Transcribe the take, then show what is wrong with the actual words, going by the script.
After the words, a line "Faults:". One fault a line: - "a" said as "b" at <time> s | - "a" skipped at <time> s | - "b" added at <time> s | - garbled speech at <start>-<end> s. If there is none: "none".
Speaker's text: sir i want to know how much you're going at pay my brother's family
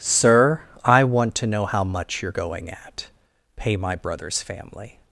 sir i want to know how much you're going at pay my brother's family
Faults:
none